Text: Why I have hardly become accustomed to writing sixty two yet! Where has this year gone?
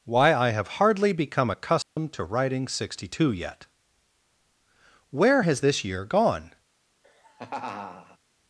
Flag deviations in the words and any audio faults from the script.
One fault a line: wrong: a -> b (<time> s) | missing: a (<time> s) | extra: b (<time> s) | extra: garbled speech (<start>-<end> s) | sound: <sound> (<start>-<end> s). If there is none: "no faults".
sound: dropout (1.8-2.0 s)
sound: laugh (7.0-8.2 s)